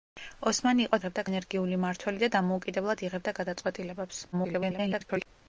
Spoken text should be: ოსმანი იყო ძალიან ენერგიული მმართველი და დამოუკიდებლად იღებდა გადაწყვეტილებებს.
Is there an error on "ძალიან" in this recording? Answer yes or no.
yes